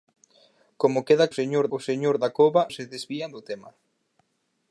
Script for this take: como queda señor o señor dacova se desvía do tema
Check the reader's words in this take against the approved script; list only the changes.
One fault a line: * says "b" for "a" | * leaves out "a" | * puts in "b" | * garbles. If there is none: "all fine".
all fine